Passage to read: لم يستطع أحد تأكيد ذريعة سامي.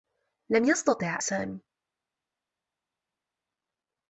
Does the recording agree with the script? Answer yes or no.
no